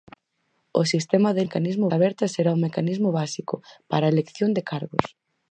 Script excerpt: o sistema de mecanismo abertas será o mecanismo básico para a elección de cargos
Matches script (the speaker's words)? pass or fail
pass